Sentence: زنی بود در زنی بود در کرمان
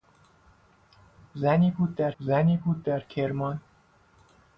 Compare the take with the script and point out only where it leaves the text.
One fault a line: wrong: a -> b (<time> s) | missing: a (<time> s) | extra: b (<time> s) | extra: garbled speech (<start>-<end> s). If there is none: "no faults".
no faults